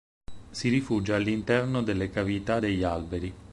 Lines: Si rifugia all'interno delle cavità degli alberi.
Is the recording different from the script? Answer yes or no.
no